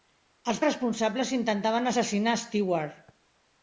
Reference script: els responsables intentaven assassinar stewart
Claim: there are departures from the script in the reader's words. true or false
false